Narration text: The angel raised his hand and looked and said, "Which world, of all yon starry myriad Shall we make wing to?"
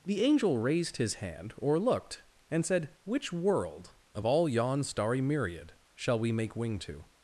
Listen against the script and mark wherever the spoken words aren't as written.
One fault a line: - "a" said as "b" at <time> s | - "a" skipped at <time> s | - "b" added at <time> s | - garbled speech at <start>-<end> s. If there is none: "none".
- "and" said as "or" at 1.6 s